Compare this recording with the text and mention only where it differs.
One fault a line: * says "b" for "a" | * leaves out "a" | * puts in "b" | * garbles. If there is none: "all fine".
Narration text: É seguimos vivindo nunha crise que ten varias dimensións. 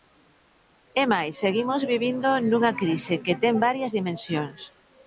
* puts in "máis"